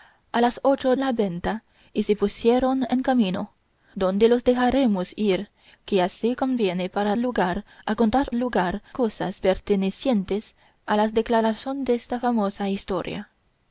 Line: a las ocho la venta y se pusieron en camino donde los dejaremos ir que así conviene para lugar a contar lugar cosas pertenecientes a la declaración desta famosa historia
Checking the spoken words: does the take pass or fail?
pass